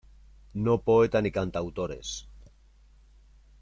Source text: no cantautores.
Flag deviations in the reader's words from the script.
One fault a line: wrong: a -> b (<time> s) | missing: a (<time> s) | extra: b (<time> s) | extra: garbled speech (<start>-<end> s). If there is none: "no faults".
extra: poeta ni (0.8 s)